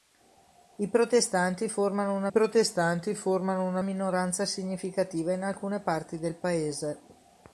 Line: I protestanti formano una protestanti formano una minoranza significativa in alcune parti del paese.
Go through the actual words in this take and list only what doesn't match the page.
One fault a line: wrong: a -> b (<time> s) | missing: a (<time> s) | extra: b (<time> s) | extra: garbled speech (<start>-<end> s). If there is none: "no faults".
no faults